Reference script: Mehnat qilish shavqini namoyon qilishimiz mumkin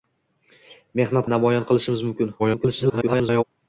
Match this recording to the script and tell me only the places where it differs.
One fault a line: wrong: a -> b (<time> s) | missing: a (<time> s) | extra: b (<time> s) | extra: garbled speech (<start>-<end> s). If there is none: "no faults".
missing: qilish shavqini (1.3 s)
extra: garbled speech (2.4-3.4 s)